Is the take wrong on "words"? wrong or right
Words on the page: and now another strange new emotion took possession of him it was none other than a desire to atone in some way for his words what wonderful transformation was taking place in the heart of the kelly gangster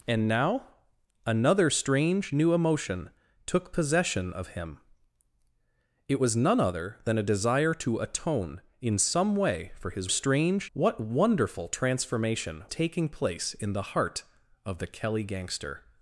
wrong